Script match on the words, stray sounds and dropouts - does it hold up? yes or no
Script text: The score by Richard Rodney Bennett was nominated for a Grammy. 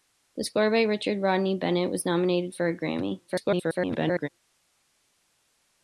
no